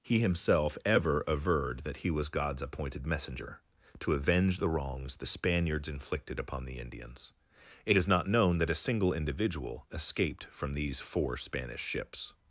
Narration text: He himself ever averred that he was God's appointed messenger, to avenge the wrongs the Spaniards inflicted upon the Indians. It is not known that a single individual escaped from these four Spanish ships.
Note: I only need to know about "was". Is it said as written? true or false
true